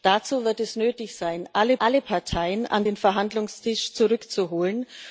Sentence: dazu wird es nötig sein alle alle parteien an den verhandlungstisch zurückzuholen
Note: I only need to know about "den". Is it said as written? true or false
true